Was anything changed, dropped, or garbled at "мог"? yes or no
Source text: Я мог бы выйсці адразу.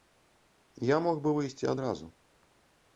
no